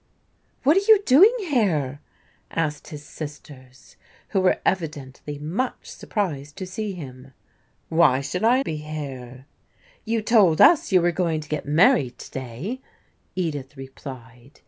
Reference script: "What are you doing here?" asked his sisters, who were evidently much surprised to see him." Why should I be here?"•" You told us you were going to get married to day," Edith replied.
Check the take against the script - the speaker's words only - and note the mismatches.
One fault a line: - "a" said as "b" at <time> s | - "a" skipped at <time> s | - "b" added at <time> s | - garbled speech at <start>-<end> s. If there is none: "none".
none